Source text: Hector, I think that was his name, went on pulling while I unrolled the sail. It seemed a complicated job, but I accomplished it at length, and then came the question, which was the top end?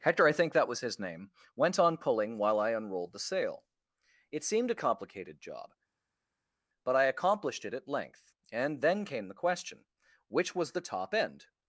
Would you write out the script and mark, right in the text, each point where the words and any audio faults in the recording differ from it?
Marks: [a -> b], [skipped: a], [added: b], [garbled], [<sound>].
Hector, I think that was his name, went on pulling while I unrolled the sail. It seemed a complicated job, but I accomplished it at length, and then came the question, which was the top end?